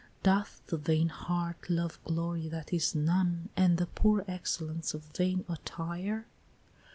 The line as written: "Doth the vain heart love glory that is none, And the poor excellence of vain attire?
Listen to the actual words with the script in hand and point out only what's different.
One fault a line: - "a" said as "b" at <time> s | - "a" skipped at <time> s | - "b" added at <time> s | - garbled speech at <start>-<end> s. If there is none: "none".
none